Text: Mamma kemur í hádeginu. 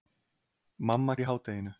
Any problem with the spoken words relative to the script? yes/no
yes